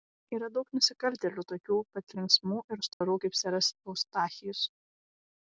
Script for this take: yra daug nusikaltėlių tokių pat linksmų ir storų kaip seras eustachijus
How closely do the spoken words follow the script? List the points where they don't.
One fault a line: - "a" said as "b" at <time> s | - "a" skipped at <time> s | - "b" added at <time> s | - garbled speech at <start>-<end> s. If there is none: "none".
none